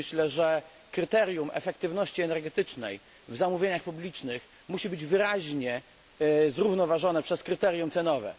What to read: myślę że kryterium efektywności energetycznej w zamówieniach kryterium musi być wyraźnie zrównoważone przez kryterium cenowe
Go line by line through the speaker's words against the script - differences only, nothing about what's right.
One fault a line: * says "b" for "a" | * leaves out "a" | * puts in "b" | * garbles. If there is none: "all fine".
* says "publicznych" for "kryterium"